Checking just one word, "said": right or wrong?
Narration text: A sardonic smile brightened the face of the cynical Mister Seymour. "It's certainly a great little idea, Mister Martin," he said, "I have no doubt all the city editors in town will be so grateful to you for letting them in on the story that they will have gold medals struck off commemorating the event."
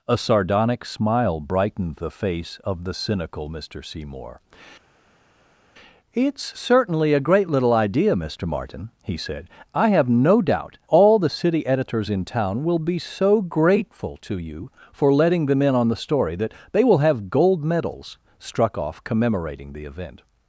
right